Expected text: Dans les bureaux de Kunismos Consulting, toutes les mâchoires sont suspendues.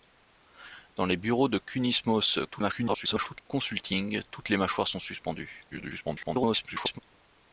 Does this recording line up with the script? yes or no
no